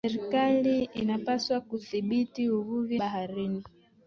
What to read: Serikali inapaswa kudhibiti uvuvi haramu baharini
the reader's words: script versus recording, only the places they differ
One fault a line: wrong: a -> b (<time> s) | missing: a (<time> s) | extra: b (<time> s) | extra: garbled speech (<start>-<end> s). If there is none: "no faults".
missing: haramu (3.0 s)